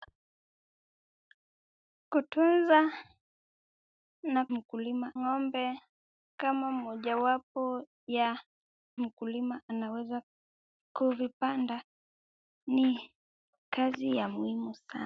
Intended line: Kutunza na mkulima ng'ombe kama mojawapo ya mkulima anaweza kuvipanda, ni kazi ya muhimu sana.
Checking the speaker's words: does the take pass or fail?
pass